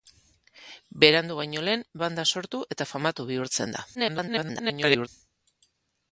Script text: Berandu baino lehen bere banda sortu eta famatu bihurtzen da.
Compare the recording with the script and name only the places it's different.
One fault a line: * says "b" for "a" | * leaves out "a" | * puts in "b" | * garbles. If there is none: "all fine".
* leaves out "bere"
* garbles